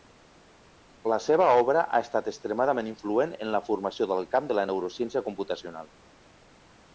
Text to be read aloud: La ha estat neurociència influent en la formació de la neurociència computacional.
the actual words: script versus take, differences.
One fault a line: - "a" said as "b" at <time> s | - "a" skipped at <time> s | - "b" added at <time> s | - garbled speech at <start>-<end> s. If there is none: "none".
- "seva obra" added at 1.2 s
- "neurociència" said as "extremadament" at 2.3 s
- "del camp" added at 4.1 s